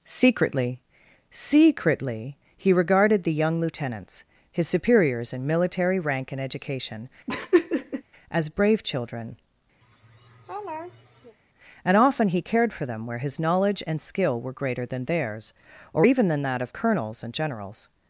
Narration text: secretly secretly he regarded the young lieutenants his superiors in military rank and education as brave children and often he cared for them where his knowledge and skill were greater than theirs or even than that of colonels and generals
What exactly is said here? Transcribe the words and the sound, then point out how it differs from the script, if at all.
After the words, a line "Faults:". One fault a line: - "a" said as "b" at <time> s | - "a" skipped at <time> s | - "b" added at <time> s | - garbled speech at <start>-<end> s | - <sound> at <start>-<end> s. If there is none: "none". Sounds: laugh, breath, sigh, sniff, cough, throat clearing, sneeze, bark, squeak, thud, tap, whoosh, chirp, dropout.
secretly secretly he regarded the young lieutenants his superiors in military rank and education as brave children and often he cared for them where his knowledge and skill were greater than theirs or even than that of colonels and generals
Faults:
- laugh at 7.3-8.0 s
- laugh at 9.8-11.4 s